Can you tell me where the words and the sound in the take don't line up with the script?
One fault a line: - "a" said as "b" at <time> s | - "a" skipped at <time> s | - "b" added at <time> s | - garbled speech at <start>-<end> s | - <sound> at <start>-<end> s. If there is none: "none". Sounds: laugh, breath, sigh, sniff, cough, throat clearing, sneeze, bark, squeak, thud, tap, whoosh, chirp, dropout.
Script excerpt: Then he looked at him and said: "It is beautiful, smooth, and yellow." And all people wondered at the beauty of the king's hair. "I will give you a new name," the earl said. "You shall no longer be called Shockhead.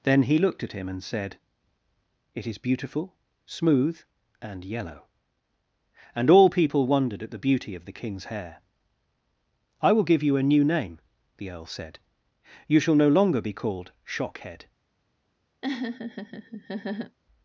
- laugh at 15.6-17.2 s